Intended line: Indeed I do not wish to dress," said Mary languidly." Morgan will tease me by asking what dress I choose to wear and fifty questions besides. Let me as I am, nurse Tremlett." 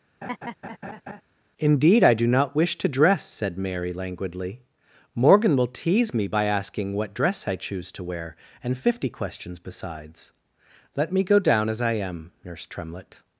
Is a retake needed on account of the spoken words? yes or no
yes